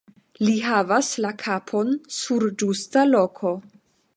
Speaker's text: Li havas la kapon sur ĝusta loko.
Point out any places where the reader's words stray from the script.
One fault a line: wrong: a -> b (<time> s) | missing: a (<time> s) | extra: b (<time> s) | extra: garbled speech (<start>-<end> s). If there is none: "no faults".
no faults